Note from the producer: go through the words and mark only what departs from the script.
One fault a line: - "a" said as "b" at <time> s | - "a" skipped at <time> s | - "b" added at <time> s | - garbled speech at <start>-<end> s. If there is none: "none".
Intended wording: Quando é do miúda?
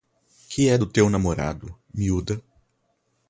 - "Quando" said as "Que" at 0.5 s
- "teu namorado" added at 0.9 s